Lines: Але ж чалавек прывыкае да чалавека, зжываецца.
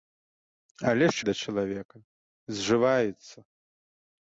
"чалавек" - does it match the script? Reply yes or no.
no